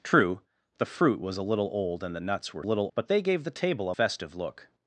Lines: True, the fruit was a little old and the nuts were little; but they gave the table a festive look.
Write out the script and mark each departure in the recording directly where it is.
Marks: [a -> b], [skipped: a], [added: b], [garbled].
True, the fruit was a little old and the nuts were little; but they gave the table a festive look.